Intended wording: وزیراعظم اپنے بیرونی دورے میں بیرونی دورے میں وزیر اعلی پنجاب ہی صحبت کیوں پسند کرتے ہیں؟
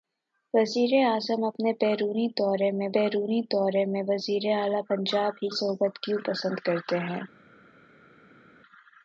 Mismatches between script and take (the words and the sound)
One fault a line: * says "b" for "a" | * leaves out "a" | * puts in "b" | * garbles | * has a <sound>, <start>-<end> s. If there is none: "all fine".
all fine